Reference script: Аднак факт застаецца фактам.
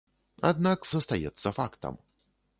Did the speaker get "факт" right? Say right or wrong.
wrong